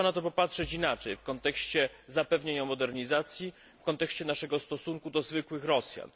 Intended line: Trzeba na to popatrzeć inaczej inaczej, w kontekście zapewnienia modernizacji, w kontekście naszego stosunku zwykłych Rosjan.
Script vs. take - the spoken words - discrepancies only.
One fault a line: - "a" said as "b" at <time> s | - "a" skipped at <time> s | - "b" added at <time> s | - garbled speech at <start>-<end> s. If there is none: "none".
- "inaczej" skipped at 1.1 s
- "do" added at 5.1 s